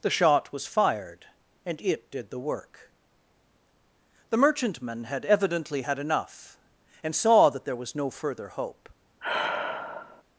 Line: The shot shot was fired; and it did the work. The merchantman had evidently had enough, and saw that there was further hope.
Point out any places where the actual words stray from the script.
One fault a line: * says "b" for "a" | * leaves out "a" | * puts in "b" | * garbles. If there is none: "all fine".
* leaves out "shot"
* puts in "no"